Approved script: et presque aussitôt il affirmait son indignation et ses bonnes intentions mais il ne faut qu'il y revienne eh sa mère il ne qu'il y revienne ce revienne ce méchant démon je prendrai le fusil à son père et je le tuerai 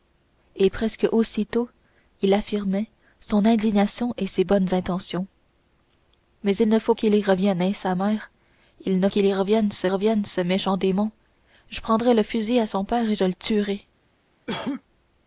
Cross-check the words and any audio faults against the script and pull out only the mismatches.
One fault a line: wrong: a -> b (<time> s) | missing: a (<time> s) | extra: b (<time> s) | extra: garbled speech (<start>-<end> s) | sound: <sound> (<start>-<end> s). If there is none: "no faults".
sound: cough (14.5-14.8 s)